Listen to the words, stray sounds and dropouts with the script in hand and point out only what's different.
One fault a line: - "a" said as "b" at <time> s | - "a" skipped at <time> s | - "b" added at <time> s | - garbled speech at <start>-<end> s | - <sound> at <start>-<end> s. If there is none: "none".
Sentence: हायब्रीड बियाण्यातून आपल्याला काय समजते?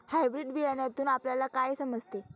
none